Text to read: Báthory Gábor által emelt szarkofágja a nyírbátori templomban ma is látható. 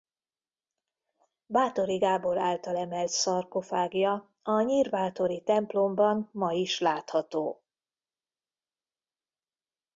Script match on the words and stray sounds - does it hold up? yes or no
yes